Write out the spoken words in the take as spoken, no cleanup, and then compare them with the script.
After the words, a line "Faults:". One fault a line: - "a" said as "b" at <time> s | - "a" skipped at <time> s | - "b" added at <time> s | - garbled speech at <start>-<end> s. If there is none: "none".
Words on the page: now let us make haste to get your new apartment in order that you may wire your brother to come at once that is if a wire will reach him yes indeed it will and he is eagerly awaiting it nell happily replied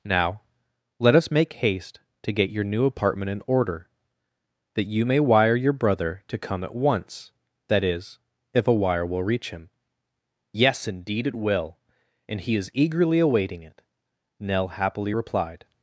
now let us make haste to get your new apartment in order that you may wire your brother to come at once that is if a wire will reach him yes indeed it will and he is eagerly awaiting it nell happily replied
Faults:
none